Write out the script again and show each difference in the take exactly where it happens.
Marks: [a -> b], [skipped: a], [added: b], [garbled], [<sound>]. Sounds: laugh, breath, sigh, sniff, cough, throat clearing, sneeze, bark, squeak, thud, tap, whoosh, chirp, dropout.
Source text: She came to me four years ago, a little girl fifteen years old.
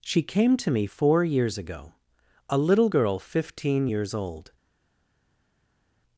She came to me four years ago, a little girl fifteen years old.